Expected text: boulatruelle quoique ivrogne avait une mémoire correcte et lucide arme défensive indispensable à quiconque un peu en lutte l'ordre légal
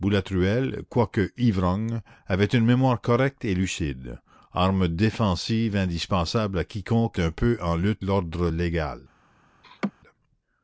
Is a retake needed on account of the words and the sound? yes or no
yes